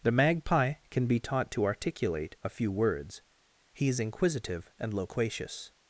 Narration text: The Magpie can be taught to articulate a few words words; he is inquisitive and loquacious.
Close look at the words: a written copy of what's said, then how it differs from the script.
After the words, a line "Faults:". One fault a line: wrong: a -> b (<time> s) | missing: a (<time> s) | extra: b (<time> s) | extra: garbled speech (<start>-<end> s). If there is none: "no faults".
The Magpie can be taught to articulate a few words; he is inquisitive and loquacious.
Faults:
missing: words (3.2 s)